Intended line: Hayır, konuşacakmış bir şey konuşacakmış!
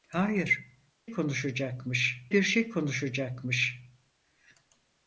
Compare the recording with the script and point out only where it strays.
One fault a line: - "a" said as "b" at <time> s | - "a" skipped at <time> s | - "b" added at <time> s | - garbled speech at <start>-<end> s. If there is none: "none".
none